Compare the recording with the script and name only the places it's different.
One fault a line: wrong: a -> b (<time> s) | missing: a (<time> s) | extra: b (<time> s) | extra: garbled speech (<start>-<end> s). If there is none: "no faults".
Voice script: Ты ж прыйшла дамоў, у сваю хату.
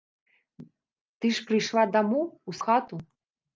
missing: сваю (2.5 s)